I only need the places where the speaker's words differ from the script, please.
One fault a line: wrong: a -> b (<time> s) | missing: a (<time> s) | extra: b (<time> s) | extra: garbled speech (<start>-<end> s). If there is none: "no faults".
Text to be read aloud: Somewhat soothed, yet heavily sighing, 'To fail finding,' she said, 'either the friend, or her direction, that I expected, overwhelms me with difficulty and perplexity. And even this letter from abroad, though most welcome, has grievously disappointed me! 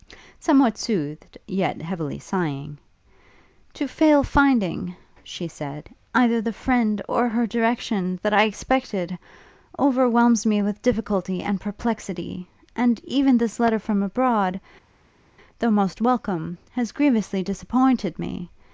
no faults